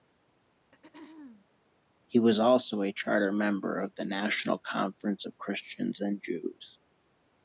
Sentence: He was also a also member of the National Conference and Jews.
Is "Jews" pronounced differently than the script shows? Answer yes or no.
no